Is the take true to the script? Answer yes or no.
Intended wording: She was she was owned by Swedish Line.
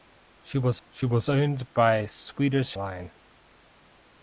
yes